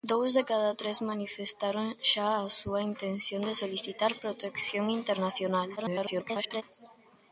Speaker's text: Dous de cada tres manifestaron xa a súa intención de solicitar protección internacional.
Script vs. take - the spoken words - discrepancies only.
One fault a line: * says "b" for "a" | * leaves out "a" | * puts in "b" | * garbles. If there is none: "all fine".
* garbles